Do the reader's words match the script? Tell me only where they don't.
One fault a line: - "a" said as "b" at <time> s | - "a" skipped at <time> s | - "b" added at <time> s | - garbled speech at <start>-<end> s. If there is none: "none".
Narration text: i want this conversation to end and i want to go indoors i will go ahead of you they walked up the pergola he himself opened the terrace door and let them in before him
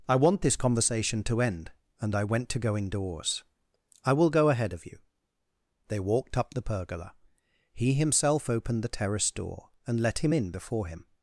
- "want" said as "went" at 2.2 s
- "them" said as "him" at 10.2 s